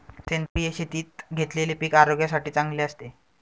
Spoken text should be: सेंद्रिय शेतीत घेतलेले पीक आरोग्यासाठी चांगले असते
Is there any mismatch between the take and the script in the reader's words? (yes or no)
no